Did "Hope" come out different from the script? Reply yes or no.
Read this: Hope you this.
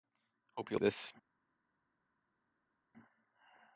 no